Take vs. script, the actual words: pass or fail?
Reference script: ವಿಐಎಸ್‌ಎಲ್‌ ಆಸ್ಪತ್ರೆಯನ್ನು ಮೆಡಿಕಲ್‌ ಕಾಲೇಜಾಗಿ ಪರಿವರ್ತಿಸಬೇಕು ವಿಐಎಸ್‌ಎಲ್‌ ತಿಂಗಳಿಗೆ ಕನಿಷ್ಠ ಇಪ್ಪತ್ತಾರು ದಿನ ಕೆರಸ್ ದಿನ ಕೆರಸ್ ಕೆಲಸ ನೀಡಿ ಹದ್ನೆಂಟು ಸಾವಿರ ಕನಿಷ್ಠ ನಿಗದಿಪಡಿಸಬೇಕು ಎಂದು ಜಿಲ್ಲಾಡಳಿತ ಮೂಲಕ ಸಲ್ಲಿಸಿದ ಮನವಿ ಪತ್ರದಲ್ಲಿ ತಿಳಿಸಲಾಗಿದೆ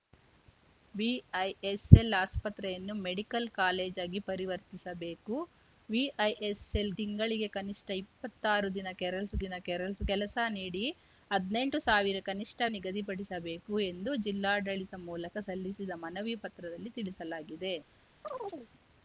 pass